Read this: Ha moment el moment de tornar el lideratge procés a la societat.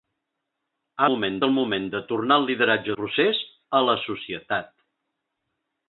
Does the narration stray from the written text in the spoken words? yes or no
no